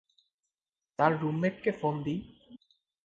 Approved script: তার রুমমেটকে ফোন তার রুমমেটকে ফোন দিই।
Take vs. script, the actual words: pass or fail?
fail